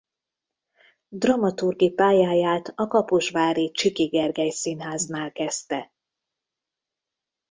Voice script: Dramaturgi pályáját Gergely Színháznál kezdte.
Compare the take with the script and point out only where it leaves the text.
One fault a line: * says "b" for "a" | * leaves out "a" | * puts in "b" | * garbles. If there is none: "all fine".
* puts in "a kaposvári Csiky"